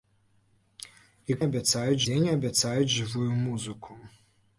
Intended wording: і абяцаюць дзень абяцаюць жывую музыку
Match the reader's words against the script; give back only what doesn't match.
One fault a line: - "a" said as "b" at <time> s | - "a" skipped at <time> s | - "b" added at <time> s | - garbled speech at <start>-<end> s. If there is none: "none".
none